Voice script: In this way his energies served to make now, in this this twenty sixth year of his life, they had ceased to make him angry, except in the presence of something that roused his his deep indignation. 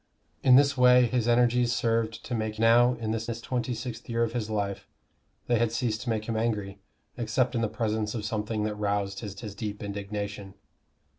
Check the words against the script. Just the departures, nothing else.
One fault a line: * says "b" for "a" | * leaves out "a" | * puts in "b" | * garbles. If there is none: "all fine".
all fine